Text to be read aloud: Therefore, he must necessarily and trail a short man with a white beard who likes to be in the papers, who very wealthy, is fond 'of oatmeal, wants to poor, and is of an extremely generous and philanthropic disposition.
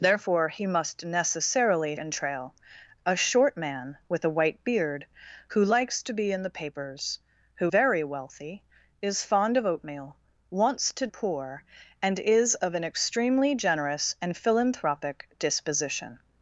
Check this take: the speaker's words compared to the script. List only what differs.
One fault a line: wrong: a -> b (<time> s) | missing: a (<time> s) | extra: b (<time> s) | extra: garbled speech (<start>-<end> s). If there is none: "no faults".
no faults